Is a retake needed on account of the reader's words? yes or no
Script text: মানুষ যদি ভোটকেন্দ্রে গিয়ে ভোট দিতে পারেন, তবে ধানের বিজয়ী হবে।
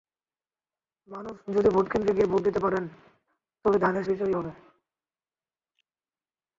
no